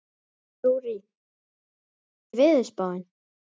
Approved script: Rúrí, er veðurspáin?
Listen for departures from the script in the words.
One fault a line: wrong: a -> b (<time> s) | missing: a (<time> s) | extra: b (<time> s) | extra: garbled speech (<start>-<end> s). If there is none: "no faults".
no faults